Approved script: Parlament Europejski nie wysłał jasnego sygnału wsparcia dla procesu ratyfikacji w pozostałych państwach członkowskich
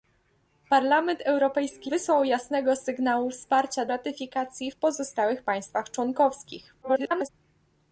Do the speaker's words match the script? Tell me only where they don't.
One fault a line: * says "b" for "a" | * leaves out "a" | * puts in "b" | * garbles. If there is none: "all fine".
* leaves out "nie"
* leaves out "dla procesu"
* garbles